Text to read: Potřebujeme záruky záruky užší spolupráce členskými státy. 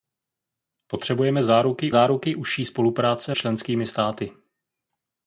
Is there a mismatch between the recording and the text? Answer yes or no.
no